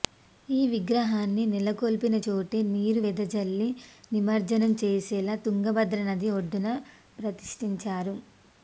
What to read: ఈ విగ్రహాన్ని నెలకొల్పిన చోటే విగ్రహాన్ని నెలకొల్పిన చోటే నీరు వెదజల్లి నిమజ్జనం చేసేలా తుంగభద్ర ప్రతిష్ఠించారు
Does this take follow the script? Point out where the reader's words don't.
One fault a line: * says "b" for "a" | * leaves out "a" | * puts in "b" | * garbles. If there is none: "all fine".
* leaves out "విగ్రహాన్ని నెలకొల్పిన చోటే"
* puts in "నది ఒడ్డున"